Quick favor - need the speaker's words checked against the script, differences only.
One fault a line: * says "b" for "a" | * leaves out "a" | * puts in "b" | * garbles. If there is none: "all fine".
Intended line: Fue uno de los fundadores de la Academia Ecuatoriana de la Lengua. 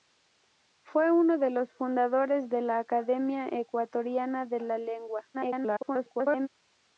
* garbles